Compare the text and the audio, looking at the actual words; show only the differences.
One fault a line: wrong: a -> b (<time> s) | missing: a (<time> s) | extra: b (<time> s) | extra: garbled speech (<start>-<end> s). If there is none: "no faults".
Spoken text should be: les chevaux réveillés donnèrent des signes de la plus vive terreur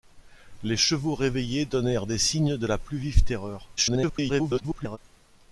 extra: garbled speech (3.8-5.0 s)